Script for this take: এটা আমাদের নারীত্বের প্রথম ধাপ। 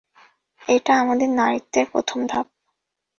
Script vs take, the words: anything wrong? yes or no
no